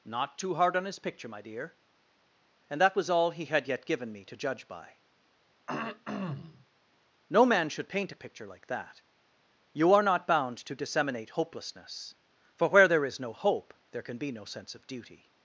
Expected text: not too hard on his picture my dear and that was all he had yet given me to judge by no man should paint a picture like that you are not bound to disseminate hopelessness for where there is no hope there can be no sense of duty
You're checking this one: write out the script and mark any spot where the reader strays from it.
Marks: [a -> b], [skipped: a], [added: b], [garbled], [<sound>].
not too hard on his picture my dear and that was all he had yet given me to judge by [throat clearing] no man should paint a picture like that you are not bound to disseminate hopelessness for where there is no hope there can be no sense of duty